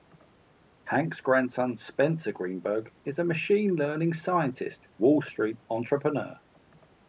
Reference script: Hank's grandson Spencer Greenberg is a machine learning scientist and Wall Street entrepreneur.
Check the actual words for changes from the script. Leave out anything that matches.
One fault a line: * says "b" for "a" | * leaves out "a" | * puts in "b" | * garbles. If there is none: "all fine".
* leaves out "and"